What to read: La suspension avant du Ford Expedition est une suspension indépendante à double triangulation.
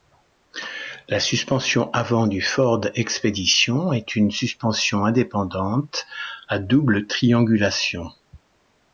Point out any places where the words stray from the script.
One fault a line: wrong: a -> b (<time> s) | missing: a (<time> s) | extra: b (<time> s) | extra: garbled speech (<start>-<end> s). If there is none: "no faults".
no faults